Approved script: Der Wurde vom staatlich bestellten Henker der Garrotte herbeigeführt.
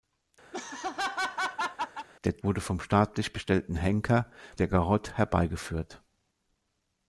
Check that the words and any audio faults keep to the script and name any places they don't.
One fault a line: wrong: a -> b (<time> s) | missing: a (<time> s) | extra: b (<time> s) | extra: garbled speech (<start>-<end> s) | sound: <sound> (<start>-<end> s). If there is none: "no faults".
sound: laugh (0.5-2.1 s)